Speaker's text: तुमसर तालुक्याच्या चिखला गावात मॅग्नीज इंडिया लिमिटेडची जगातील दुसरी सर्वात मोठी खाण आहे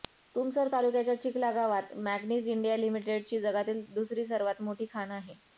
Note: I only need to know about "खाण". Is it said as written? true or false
true